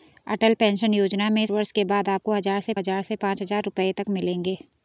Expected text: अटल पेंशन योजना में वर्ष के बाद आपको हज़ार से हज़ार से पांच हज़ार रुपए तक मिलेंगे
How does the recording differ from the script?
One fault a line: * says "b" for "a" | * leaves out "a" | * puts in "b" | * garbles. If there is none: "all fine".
all fine